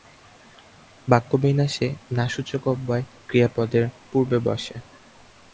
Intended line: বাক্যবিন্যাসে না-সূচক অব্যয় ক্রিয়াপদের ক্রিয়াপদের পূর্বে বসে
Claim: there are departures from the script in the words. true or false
true